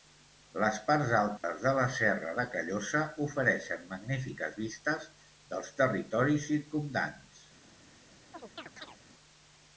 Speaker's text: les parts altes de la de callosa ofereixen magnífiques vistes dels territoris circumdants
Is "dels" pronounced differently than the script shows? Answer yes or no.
no